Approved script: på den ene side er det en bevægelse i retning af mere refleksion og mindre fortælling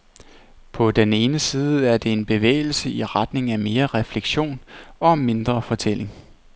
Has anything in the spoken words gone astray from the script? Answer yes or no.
no